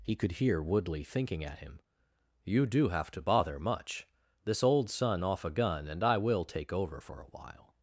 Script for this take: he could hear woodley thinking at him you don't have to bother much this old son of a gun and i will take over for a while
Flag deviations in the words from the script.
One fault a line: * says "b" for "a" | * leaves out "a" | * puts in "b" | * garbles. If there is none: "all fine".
* says "do" for "don't"
* says "off" for "of"